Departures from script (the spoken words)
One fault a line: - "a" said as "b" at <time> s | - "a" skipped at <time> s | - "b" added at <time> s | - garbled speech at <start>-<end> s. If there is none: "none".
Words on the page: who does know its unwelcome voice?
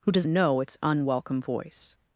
none